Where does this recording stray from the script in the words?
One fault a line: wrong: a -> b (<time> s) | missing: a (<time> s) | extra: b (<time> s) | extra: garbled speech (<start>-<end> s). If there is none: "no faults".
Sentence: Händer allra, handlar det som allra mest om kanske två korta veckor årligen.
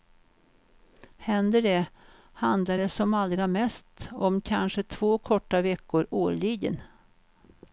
wrong: allra -> det (1.6 s)